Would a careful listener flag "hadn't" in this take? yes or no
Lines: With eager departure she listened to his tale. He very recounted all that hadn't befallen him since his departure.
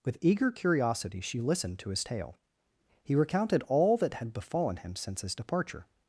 yes